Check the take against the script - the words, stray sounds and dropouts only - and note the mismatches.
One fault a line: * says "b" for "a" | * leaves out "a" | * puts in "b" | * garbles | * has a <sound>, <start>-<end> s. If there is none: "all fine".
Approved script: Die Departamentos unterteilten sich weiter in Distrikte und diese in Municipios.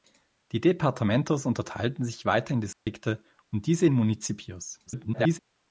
* has a dropout, 2.7-2.9 s
* garbles